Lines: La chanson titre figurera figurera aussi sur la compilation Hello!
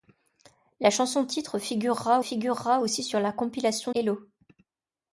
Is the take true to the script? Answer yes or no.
yes